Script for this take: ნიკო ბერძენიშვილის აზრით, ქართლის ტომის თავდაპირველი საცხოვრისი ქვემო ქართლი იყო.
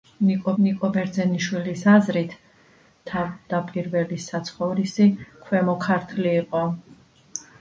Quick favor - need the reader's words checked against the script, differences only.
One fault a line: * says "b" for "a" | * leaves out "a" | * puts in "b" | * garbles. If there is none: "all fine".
* puts in "ნიკო"
* leaves out "ქართლის ტომის"